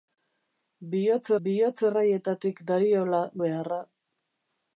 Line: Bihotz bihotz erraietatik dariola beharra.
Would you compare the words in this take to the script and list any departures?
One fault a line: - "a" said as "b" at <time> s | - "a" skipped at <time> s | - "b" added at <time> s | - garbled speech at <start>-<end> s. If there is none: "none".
none